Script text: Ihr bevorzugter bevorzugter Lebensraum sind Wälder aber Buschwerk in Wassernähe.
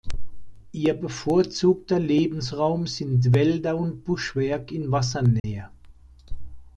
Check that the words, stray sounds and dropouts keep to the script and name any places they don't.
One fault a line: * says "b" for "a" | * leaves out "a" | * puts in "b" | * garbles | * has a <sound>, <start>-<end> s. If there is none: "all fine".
* leaves out "bevorzugter"
* says "und" for "aber"
* has a dropout, 5.4-5.4 s